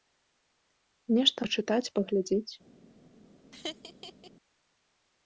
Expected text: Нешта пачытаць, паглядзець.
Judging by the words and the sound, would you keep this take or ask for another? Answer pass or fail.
fail